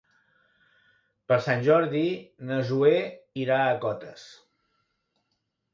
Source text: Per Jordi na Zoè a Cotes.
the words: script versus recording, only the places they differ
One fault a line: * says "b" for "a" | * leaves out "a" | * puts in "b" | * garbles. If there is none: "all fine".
* puts in "Sant"
* puts in "irà"